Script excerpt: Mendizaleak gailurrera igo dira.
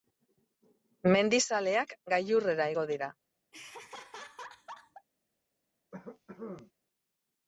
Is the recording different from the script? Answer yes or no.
no